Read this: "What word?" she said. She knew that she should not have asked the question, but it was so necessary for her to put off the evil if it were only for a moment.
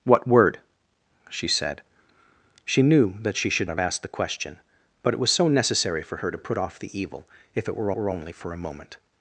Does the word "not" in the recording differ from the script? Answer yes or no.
yes